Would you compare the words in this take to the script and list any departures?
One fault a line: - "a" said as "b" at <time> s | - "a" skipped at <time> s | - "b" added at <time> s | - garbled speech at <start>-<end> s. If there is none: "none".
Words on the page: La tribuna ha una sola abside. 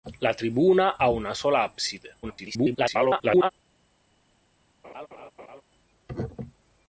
- garbled speech at 2.2-3.5 s